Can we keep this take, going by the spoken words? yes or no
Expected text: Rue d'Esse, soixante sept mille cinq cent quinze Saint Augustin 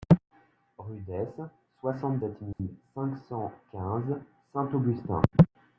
yes